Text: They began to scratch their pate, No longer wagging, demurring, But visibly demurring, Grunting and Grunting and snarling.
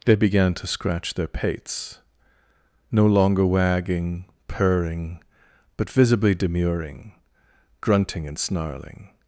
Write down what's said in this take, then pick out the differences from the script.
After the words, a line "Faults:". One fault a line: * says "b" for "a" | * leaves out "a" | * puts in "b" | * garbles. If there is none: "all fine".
They began to scratch their pates, No longer wagging, purring, But visibly demurring, Grunting and snarling.
Faults:
* says "pates" for "pate"
* says "purring" for "demurring"
* leaves out "Grunting and"